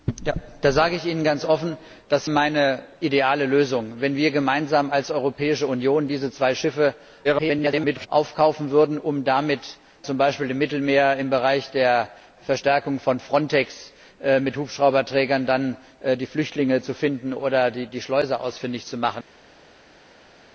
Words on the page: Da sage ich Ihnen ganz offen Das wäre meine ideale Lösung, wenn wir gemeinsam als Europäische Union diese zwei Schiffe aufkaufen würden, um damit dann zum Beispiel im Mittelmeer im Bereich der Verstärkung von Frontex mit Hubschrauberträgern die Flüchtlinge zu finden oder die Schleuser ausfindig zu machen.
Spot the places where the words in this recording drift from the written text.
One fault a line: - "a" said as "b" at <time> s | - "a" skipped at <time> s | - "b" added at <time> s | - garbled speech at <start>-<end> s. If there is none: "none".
- "wäre" skipped at 2.3 s
- garbled speech at 7.2-8.1 s
- "dann" skipped at 9.6 s